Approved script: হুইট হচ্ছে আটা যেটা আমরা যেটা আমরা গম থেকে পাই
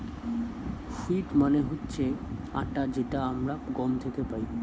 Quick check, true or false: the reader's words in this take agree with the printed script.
false